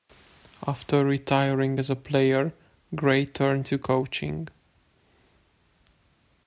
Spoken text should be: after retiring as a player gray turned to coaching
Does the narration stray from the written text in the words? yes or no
no